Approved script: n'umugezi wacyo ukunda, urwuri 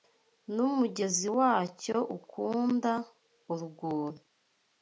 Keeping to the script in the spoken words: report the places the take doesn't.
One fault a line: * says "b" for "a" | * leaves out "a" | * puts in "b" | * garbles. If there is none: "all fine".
all fine